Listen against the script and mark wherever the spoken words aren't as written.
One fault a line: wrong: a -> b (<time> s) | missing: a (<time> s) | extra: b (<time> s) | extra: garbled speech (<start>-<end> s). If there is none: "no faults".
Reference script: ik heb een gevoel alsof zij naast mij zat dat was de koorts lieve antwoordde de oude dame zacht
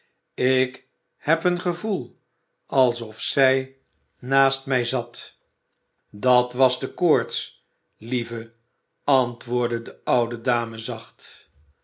no faults